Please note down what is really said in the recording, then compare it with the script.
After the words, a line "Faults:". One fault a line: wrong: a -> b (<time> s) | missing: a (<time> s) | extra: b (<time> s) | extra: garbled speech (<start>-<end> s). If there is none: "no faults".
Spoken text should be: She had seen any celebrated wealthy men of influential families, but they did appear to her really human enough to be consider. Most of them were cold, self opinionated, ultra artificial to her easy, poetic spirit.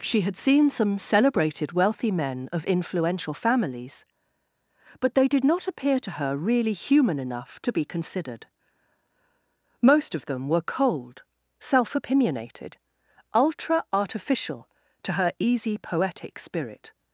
She had seen some celebrated wealthy men of influential families, but they did not appear to her really human enough to be considered. Most of them were cold, self opinionated, ultra artificial to her easy, poetic spirit.
Faults:
wrong: any -> some (0.7 s)
extra: not (5.4 s)
wrong: consider -> considered (7.8 s)